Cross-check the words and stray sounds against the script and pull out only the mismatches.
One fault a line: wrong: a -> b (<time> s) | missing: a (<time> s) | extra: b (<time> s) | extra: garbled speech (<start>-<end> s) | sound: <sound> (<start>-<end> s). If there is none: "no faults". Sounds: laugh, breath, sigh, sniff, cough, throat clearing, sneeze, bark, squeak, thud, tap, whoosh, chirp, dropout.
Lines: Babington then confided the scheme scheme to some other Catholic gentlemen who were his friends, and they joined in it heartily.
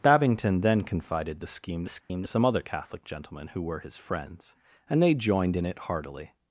sound: dropout (2.0-2.1 s)